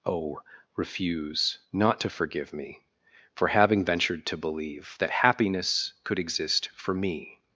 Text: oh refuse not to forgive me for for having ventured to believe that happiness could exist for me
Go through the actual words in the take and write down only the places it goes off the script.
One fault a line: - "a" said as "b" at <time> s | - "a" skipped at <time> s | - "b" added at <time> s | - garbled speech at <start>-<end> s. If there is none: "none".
- "for" skipped at 3.5 s